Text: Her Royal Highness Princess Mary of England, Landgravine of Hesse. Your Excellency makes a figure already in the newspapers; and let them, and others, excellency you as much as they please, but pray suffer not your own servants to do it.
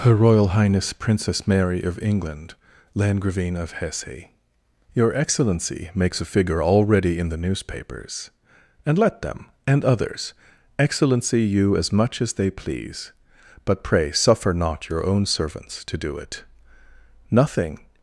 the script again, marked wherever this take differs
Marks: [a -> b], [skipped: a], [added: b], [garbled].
Her Royal Highness Princess Mary of England, Landgravine of Hesse. Your Excellency makes a figure already in the newspapers; and let them, and others, excellency you as much as they please, but pray suffer not your own servants to do it. [added: Nothing]